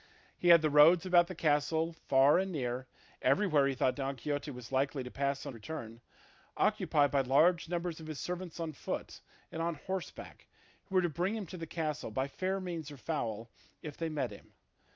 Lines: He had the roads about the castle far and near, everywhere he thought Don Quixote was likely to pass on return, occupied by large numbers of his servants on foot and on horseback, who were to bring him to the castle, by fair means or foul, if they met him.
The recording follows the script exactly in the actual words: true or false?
true